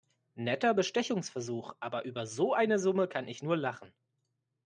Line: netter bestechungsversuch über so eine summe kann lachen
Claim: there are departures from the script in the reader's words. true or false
true